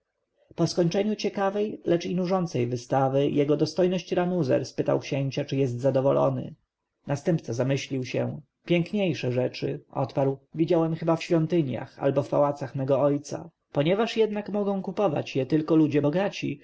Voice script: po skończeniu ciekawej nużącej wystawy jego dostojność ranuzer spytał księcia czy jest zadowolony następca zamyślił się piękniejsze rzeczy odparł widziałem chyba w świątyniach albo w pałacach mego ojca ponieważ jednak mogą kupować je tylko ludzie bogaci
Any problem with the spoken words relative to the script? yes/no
yes